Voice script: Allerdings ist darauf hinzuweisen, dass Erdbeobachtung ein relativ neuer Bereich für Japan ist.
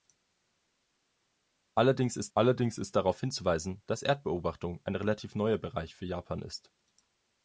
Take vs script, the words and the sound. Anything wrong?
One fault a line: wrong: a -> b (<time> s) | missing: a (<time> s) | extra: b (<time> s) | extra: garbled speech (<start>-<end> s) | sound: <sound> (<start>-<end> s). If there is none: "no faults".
extra: allerdings ist (2.3 s)